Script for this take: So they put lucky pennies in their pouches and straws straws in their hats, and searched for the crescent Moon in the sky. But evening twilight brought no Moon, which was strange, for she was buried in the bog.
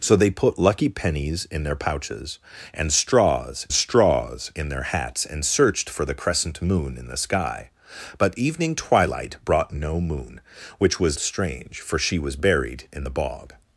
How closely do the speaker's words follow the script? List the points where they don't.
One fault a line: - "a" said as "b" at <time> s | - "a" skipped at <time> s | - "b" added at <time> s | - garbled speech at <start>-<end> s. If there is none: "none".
none